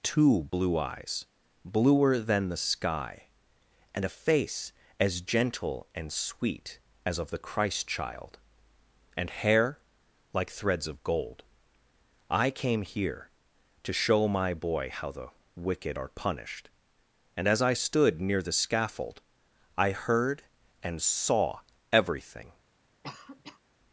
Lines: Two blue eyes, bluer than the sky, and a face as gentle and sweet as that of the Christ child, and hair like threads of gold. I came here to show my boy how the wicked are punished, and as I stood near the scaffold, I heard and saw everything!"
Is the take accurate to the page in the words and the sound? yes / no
no